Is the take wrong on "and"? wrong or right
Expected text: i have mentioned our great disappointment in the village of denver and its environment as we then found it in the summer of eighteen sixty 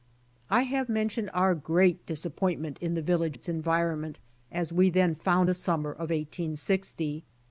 wrong